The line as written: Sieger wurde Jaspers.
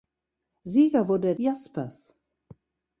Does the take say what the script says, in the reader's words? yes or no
yes